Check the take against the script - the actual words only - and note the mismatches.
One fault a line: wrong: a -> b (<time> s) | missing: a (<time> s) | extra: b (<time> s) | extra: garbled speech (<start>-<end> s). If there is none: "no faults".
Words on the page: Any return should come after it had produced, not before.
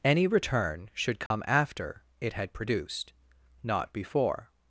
no faults